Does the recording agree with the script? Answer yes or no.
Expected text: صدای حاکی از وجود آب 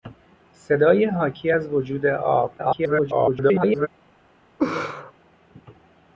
no